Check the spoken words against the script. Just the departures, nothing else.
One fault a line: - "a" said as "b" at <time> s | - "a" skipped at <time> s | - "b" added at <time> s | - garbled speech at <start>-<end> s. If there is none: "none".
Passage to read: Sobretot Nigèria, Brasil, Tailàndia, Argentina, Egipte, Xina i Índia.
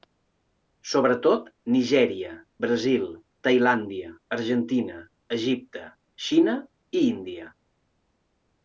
none